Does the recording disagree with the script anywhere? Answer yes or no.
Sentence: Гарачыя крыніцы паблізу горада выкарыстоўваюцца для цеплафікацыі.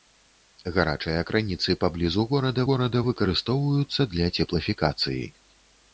yes